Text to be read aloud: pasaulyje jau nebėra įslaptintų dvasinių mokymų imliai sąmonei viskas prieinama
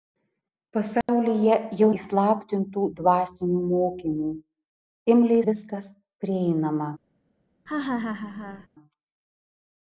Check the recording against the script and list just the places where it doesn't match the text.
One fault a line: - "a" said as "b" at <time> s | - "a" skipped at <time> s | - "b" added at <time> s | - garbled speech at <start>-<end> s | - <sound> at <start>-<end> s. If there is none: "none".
- dropout at 1.0-1.1 s
- "nebėra" skipped at 1.9 s
- "sąmonei" skipped at 5.4 s
- laugh at 7.7-8.7 s